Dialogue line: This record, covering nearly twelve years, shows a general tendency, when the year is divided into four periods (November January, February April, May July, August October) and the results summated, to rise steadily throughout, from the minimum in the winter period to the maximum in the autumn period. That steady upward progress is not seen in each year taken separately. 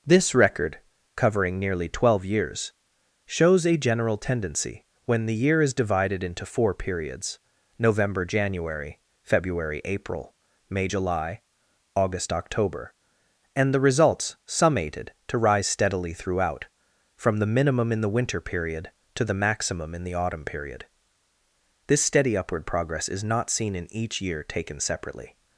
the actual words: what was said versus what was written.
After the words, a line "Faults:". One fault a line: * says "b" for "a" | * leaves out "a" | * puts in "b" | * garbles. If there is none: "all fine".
This record, covering nearly twelve years, shows a general tendency, when the year is divided into four periods (November January, February April, May July, August October) and the results summated, to rise steadily throughout, from the minimum in the winter period to the maximum in the autumn period. This steady upward progress is not seen in each year taken separately.
Faults:
* says "This" for "That"